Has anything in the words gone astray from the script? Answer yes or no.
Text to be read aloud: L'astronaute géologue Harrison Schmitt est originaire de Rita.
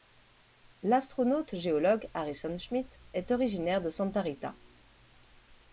yes